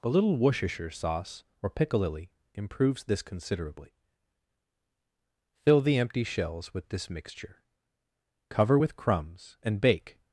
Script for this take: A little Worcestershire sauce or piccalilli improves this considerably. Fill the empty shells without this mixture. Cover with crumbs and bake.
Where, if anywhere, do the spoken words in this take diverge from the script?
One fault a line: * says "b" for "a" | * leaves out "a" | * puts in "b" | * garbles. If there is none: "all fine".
* says "with" for "without"